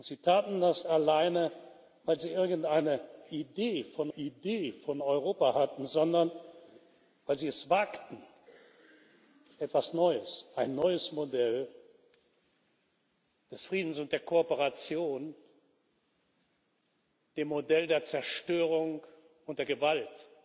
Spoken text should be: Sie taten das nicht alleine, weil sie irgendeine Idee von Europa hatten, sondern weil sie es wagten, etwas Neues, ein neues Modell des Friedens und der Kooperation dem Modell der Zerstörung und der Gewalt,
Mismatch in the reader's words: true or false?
true